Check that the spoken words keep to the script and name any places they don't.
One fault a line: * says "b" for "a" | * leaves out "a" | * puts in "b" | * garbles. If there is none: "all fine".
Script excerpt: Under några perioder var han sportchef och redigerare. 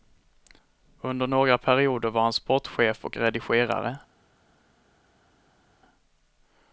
all fine